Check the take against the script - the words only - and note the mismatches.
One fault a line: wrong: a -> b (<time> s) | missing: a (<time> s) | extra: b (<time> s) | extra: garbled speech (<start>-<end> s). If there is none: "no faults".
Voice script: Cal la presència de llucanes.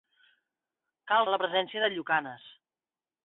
no faults